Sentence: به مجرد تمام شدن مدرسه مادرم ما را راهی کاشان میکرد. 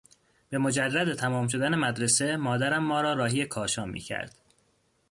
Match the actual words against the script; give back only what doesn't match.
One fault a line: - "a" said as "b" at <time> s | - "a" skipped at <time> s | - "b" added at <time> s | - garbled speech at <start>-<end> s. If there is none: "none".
none